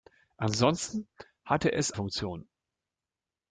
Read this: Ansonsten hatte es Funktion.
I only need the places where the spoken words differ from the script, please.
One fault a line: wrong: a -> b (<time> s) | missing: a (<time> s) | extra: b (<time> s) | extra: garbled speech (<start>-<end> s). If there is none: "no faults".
no faults